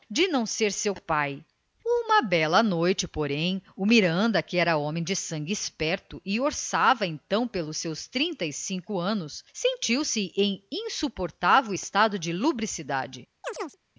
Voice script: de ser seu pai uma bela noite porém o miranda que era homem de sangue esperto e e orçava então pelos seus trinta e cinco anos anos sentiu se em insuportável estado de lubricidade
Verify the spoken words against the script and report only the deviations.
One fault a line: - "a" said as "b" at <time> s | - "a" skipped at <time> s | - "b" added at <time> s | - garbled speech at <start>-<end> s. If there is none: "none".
- "não" added at 0.3 s
- "e" skipped at 6.4 s
- "anos" skipped at 9.4 s